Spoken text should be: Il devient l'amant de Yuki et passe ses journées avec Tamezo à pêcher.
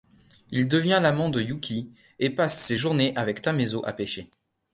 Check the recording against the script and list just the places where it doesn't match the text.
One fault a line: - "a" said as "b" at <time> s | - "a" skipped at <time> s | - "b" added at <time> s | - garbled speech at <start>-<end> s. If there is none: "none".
none